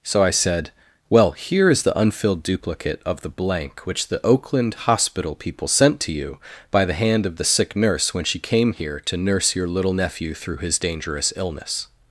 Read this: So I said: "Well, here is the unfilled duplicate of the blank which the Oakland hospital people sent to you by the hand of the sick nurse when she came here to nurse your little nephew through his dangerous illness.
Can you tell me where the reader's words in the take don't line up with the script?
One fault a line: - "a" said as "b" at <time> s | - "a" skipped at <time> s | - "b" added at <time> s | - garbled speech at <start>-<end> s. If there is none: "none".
none